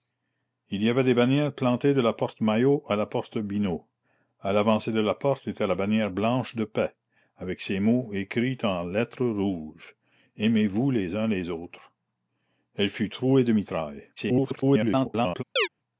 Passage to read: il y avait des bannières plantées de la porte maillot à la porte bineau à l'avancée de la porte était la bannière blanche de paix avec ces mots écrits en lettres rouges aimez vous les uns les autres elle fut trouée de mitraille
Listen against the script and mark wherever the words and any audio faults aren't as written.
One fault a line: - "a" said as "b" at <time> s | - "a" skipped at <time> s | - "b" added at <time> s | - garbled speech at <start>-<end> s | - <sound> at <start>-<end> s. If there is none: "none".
- garbled speech at 14.2-15.4 s
- chirp at 15.6-15.7 s